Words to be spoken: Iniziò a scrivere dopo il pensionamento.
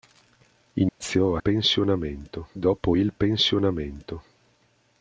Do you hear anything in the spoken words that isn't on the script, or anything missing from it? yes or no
yes